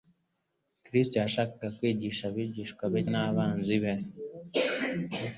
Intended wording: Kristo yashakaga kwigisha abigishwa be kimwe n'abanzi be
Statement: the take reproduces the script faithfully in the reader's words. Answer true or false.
false